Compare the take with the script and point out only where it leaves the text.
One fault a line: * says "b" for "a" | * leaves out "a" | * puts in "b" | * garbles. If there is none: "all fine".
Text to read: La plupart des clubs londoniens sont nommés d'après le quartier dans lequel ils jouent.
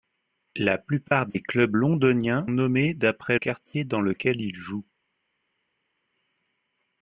* leaves out "sont"
* leaves out "le"